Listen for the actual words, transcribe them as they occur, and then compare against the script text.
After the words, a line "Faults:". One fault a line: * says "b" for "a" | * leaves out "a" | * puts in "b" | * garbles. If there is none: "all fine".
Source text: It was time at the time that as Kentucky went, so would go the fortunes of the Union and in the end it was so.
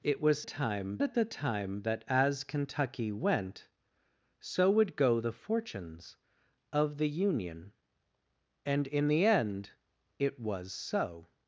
It was time at the time that as Kentucky went, so would go the fortunes of the Union and in the end it was so.
Faults:
all fine